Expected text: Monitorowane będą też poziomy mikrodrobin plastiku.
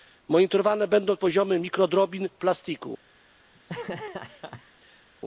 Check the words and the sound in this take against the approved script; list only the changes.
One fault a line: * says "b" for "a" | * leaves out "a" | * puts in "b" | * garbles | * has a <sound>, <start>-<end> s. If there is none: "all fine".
* leaves out "też"
* has a laugh, 3.5-5.1 s